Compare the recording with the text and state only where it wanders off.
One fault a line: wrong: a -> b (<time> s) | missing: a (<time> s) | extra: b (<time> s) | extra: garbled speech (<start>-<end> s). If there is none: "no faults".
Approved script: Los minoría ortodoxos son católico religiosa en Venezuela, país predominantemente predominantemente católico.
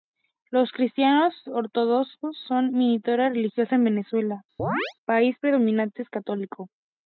wrong: minoría -> cristianos (0.7 s)
wrong: católico -> minoría (2.7 s)
missing: predominantemente (6.1 s)